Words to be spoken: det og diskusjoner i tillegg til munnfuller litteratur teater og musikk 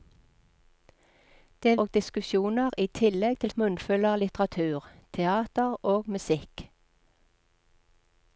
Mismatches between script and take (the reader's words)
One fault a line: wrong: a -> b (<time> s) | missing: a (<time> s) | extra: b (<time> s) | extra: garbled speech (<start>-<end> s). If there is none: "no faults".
no faults